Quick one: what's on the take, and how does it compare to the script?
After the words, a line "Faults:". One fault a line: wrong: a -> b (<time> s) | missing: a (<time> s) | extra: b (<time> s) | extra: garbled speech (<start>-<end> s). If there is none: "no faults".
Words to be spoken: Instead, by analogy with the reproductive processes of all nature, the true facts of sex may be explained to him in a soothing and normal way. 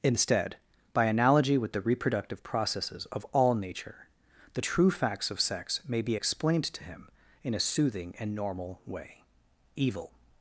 Instead, by analogy with the reproductive processes of all nature, the true facts of sex may be explained to him in a soothing and normal way. EVIL
Faults:
extra: EVIL (9.7 s)